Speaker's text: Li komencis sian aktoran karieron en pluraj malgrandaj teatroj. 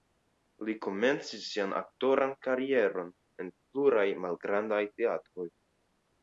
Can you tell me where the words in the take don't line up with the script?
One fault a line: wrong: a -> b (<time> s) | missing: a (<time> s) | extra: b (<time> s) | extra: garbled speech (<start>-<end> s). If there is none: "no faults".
no faults